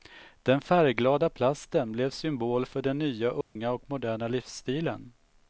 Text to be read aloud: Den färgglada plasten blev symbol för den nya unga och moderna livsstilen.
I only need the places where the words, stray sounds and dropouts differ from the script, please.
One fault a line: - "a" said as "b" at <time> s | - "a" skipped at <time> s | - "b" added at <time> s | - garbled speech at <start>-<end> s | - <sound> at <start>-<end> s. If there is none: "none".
- dropout at 3.4-3.6 s